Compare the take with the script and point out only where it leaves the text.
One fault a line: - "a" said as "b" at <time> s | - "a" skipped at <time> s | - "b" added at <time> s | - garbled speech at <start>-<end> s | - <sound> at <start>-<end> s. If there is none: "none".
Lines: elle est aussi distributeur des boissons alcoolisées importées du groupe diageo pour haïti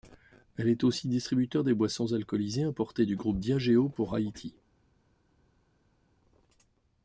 none